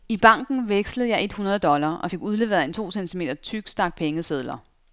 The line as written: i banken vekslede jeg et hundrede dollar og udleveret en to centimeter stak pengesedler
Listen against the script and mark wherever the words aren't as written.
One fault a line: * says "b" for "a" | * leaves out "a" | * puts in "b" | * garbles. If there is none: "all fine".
* puts in "fik"
* puts in "tyk"